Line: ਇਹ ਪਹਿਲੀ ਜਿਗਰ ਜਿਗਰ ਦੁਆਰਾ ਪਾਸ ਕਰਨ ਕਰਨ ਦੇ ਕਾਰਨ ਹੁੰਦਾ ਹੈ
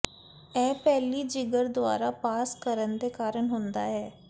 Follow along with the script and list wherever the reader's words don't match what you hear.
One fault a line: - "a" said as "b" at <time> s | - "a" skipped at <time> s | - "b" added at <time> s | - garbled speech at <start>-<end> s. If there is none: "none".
- "ਜਿਗਰ" skipped at 1.7 s
- "ਕਰਨ" skipped at 3.0 s